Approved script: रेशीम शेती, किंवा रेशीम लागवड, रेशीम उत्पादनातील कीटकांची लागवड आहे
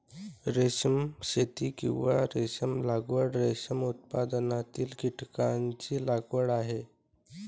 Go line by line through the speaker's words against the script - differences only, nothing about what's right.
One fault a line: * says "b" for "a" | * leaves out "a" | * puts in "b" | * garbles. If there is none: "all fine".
all fine